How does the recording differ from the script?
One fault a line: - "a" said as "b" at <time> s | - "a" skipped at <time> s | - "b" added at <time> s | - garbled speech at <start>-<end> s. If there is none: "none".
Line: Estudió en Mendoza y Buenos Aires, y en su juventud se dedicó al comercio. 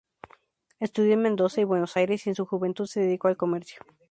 none